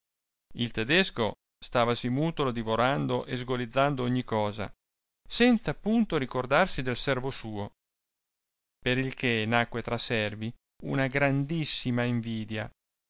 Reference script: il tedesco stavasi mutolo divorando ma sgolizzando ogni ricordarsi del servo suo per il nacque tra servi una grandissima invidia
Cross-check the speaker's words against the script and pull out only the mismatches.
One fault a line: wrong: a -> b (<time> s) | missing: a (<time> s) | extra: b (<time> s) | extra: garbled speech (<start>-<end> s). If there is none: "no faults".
wrong: ma -> e (3.2 s)
extra: cosa senza punto (4.2 s)
extra: che (9.1 s)